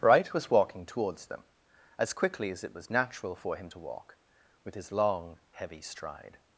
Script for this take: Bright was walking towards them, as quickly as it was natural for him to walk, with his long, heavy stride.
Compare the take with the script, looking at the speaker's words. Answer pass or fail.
pass